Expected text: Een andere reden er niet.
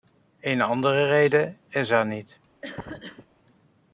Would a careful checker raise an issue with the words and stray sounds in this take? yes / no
yes